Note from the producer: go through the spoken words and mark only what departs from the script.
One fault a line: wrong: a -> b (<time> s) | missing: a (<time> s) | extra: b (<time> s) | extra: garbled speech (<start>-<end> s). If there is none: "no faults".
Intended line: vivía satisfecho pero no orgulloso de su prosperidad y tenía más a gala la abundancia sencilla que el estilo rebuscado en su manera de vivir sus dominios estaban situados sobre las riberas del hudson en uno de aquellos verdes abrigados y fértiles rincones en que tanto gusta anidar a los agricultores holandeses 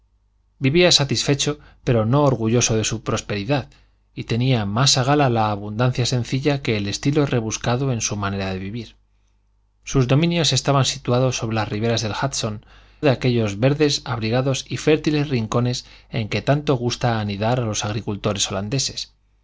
missing: en uno (12.7 s)